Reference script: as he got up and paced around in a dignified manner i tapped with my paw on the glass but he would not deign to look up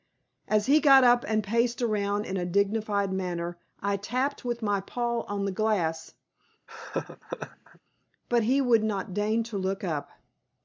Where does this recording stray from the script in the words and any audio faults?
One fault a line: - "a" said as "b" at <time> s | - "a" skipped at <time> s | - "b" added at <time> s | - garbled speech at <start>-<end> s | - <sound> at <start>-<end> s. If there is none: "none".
- laugh at 6.7-7.8 s